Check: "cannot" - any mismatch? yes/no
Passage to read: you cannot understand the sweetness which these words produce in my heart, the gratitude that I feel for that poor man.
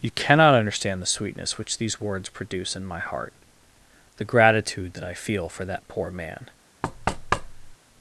no